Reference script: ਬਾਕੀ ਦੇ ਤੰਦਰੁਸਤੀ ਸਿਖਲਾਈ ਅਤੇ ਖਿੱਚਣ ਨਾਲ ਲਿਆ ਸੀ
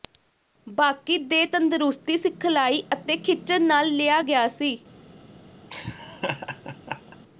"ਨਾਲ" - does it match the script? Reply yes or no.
yes